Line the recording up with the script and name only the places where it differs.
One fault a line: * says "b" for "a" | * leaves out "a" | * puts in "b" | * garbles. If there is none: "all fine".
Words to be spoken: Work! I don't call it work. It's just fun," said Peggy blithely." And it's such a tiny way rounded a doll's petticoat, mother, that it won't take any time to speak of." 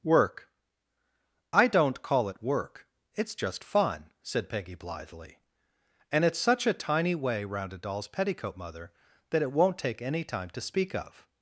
* says "round" for "rounded"